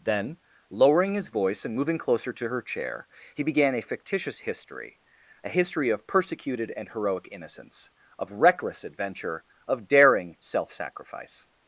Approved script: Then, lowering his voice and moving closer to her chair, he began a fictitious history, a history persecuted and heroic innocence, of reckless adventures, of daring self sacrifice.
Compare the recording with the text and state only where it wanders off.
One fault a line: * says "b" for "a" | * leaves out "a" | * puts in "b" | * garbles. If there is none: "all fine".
* puts in "of"
* says "adventure" for "adventures"